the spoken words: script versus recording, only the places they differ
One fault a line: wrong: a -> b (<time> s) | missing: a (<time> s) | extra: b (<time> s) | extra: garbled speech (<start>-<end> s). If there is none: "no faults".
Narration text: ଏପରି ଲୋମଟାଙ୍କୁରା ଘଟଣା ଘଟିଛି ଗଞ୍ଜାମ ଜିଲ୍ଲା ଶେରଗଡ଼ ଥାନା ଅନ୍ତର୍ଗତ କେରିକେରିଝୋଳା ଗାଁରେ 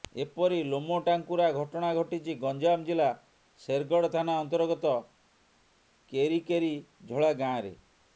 no faults